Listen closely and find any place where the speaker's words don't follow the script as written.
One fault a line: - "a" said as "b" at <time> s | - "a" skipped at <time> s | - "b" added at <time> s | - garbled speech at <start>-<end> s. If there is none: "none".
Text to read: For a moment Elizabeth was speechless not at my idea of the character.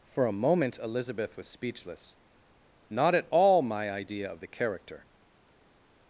- "all" added at 3.3 s